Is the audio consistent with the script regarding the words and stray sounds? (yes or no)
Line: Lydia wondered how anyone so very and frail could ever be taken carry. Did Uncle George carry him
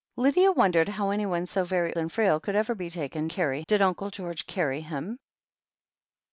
yes